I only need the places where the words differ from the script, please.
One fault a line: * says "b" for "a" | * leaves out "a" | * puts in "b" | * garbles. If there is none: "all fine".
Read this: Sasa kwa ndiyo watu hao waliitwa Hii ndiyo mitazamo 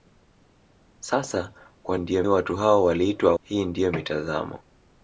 all fine